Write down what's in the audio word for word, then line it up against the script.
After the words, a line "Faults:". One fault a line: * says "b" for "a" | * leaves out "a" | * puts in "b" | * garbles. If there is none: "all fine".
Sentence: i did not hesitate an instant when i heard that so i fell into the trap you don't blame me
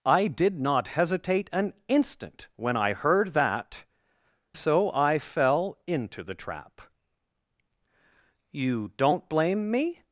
i did not hesitate an instant when i heard that so i fell into the trap you don't blame me
Faults:
all fine